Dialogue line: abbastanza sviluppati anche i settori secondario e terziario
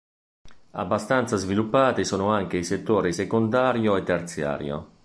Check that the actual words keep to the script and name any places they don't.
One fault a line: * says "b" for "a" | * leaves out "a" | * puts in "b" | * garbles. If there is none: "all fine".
* puts in "sono"